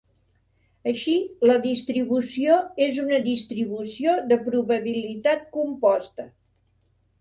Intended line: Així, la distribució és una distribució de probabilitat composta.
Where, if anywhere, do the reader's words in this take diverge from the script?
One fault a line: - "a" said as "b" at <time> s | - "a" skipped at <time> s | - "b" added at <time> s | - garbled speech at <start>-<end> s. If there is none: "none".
none